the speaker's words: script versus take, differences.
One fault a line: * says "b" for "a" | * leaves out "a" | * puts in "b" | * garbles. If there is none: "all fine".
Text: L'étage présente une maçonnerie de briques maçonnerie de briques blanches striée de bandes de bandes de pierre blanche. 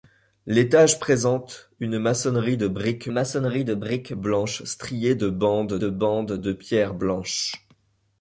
all fine